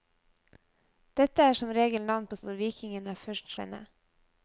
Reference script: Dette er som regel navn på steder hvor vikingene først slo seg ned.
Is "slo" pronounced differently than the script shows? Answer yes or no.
yes